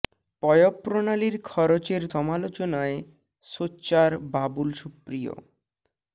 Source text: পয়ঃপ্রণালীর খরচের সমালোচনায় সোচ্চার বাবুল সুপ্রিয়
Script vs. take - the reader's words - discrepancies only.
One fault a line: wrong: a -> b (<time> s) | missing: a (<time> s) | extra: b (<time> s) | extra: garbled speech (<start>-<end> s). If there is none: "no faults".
no faults